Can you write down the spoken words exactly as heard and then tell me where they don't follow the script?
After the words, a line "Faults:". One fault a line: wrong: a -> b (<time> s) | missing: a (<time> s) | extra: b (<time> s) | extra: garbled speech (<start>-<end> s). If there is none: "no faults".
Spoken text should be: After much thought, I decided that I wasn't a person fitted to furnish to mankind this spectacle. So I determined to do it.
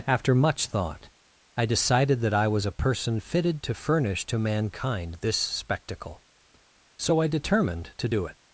After much thought, I decided that I was a person fitted to furnish to mankind this spectacle. So I determined to do it.
Faults:
wrong: wasn't -> was (2.5 s)